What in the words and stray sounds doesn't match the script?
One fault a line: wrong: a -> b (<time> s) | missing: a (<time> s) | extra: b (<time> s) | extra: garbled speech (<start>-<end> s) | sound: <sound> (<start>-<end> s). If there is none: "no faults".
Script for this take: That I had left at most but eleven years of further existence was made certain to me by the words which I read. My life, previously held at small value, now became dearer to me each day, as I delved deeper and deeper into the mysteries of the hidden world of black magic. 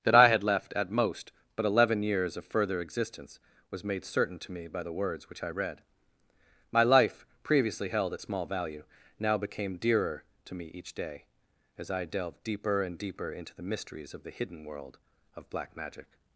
no faults